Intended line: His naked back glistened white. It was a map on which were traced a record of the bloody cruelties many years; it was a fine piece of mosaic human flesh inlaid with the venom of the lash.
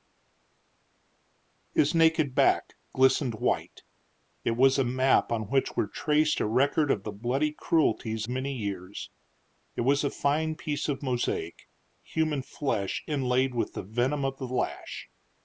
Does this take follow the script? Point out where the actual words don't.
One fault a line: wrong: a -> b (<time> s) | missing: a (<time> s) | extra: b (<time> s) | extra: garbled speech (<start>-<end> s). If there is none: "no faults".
no faults